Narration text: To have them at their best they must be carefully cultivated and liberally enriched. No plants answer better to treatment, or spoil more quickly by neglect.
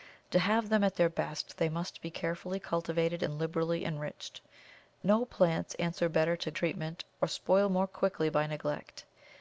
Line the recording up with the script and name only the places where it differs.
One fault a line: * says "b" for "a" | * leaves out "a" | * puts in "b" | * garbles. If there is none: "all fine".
all fine